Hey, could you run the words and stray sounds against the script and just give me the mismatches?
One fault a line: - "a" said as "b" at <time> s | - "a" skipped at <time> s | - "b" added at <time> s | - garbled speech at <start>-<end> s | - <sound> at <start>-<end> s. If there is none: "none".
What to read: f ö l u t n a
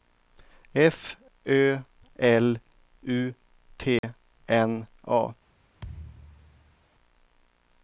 - dropout at 4.0-4.0 s
- thud at 5.8-6.8 s